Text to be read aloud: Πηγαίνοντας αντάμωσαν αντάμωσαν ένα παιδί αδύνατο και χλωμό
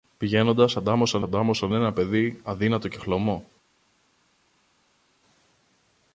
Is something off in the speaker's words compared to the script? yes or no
no